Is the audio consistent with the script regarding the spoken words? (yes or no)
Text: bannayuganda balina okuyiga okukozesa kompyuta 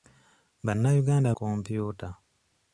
no